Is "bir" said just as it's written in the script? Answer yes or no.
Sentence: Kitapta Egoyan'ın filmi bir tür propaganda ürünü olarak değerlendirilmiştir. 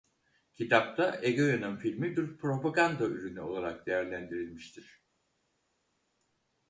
no